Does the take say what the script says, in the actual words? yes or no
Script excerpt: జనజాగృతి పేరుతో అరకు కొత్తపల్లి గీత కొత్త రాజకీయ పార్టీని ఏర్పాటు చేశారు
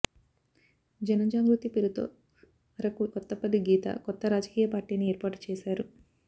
yes